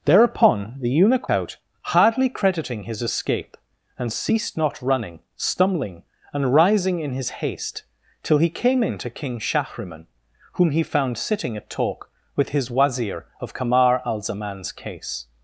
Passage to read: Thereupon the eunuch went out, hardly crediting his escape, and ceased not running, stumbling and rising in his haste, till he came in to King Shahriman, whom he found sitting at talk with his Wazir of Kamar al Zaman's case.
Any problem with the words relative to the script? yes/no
yes